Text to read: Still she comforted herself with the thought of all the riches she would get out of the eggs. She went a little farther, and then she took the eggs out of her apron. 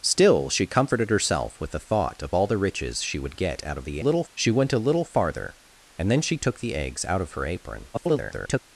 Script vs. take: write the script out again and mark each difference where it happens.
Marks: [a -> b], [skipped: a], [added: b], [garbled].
Still she comforted herself with the thought of all the riches she would get out of the [eggs. -> little] She went a little farther, and then she took the eggs out of her apron. [garbled]